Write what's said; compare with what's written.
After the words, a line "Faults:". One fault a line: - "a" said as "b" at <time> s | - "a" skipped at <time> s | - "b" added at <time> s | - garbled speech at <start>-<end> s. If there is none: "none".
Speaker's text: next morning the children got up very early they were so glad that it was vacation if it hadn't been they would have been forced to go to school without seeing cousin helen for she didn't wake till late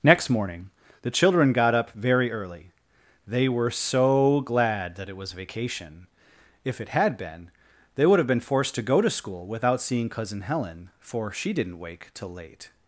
next morning the children got up very early they were so glad that it was vacation if it had been they would have been forced to go to school without seeing cousin helen for she didn't wake till late
Faults:
- "hadn't" said as "had" at 6.9 s